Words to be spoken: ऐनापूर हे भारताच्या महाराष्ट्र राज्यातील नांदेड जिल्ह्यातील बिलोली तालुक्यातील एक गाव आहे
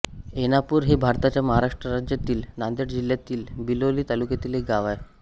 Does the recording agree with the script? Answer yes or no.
yes